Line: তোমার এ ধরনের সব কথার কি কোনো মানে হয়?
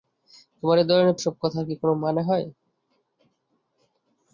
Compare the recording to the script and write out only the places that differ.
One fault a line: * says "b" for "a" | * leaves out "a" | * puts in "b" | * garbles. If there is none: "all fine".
all fine